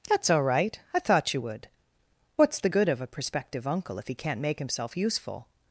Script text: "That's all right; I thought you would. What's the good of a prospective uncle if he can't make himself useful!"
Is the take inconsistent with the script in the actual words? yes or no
no